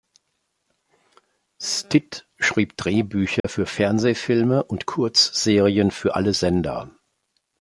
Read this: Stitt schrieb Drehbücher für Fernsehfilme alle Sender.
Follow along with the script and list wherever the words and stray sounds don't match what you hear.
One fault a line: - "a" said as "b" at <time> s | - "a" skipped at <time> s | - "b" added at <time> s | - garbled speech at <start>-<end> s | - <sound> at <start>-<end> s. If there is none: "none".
- dropout at 3.4-3.4 s
- "und Kurzserien für" added at 4.6 s